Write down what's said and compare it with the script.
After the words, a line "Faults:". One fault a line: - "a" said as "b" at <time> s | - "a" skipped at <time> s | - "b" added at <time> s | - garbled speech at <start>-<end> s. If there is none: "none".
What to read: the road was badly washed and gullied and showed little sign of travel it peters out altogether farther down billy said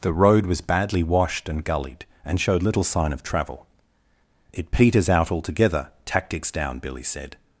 the road was badly washed and gullied and showed little sign of travel it peters out altogether tactics down billy said
Faults:
- "farther" said as "tactics" at 6.0 s